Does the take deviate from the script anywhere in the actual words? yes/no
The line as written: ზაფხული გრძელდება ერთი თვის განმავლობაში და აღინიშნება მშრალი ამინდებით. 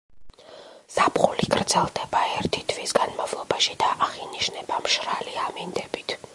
no